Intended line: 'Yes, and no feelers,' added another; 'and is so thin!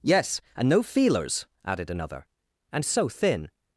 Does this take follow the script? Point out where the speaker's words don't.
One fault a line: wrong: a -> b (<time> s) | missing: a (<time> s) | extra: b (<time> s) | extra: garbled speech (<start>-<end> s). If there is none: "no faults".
no faults